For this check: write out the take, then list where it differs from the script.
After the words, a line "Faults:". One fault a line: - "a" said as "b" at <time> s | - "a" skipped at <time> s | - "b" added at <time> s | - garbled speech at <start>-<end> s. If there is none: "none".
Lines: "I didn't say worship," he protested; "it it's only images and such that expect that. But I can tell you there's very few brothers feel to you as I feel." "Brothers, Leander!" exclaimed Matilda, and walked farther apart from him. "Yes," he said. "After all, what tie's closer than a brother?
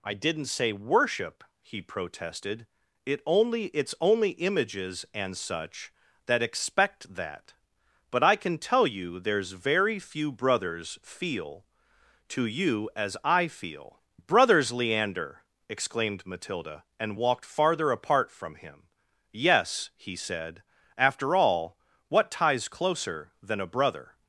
"I didn't say worship," he protested; "it only it's only images and such that expect that. But I can tell you there's very few brothers feel to you as I feel." "Brothers, Leander!" exclaimed Matilda, and walked farther apart from him. "Yes," he said. "After all, what tie's closer than a brother?
Faults:
- "only" added at 3.2 s